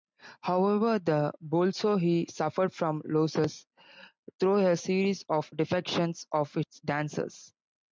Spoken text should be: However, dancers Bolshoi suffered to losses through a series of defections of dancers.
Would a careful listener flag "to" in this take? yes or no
yes